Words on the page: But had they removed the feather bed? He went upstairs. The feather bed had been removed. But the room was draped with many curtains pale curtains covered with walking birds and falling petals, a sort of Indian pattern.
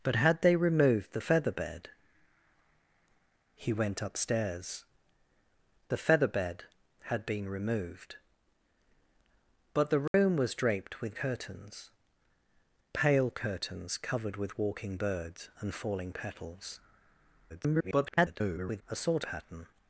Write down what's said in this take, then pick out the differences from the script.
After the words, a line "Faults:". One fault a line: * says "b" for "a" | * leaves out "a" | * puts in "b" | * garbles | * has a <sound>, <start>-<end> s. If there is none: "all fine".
But had they removed the feather bed? He went upstairs. The feather bed had been removed. But the room was draped with curtains pale curtains covered with walking birds and falling petals, [garbled] a sort pattern.
Faults:
* has a dropout, 10.1-10.1 s
* leaves out "many"
* garbles
* leaves out "of Indian"